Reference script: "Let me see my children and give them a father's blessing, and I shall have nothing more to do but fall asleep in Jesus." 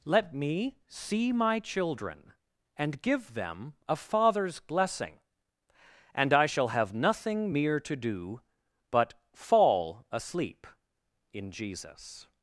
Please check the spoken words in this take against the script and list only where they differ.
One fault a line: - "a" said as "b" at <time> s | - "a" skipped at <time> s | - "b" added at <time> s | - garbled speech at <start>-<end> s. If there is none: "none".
- "more" said as "mere" at 7.5 s